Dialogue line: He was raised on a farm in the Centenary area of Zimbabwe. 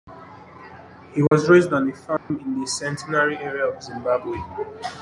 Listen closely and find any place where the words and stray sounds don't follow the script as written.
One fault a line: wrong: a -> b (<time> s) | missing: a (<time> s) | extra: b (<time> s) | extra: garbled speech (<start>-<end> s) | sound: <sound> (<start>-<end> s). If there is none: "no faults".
sound: dropout (1.3-1.3 s)
sound: dropout (2.2-2.3 s)